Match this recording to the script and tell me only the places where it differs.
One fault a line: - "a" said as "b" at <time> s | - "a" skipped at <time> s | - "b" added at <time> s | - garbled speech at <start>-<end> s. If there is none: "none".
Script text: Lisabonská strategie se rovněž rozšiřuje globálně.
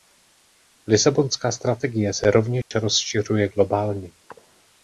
none